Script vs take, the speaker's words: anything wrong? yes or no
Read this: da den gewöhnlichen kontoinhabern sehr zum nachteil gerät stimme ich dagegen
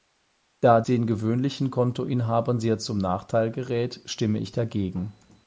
no